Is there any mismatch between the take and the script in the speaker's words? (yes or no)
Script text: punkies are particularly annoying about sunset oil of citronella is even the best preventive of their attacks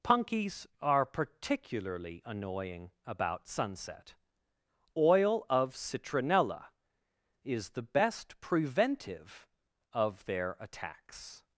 yes